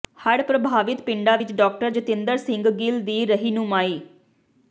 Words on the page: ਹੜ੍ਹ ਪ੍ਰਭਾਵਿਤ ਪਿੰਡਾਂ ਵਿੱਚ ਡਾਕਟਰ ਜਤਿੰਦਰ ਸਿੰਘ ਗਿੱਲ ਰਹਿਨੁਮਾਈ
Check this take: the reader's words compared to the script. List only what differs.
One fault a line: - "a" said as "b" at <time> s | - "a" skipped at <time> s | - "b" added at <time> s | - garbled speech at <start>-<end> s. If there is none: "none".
- "ਦੀ" added at 3.0 s